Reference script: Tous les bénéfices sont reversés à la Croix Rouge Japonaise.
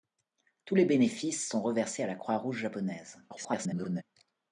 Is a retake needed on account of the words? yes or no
yes